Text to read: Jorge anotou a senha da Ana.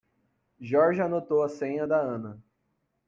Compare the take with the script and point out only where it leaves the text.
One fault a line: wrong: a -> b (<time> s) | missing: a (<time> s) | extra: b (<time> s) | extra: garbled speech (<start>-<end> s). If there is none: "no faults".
no faults